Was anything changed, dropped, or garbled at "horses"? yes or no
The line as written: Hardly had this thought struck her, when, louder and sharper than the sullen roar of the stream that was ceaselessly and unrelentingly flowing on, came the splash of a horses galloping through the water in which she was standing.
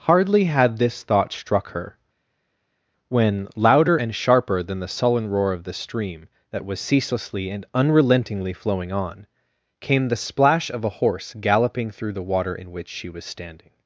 yes